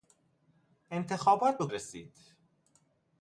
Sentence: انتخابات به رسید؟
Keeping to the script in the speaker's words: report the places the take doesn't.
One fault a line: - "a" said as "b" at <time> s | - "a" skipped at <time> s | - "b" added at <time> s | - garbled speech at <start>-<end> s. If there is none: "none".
none